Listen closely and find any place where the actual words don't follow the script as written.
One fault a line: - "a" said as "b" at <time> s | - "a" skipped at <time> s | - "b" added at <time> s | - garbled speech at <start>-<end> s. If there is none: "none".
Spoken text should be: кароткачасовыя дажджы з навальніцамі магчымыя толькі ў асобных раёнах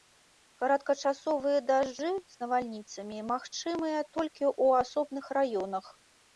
none